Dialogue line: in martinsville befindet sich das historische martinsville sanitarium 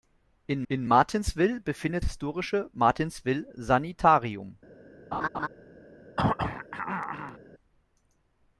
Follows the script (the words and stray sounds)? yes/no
no